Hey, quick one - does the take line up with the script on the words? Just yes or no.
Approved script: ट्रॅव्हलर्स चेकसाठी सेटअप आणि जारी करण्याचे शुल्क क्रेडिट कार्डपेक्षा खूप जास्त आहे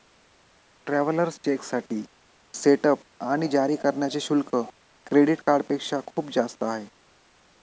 yes